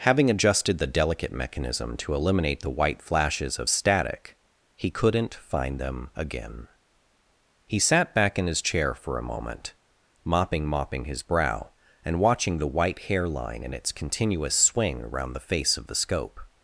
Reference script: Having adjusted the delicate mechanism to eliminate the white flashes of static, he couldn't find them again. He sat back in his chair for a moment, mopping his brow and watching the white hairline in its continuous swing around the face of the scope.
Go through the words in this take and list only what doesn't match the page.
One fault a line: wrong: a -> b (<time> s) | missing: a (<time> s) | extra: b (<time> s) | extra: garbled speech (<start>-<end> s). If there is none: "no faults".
extra: mopping (10.7 s)